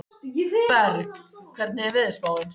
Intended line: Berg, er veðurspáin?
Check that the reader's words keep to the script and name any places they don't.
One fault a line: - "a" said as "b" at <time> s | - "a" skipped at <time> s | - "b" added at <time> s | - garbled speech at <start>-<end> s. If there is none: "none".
- "hvernig" added at 1.6 s